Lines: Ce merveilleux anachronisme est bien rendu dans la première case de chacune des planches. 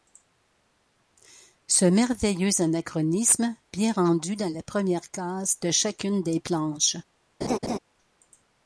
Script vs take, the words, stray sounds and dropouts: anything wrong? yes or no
yes